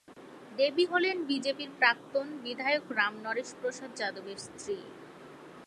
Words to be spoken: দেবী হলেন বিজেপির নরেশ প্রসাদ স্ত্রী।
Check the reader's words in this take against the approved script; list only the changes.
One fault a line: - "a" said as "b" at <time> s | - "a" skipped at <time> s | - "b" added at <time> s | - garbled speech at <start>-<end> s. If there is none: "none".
- "প্রাক্তন বিধায়ক রাম" added at 1.8 s
- "যাদবের" added at 4.0 s